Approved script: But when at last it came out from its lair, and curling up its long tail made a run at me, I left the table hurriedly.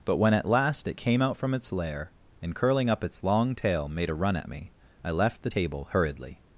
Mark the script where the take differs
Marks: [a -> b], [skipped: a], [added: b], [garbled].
But when at last it came out from its lair, and curling up its long tail made a run at me, I left the table hurriedly.